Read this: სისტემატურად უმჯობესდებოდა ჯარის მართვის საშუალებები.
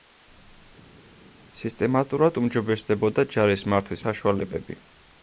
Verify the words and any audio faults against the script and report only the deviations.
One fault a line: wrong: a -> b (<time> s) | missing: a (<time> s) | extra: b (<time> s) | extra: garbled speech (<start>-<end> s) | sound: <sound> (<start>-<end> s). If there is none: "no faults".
no faults